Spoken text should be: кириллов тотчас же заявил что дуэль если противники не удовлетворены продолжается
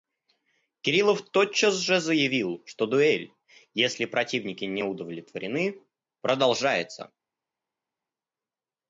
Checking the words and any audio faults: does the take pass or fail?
pass